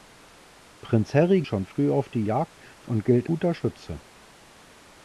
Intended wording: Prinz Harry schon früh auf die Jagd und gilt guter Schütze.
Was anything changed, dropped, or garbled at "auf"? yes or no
no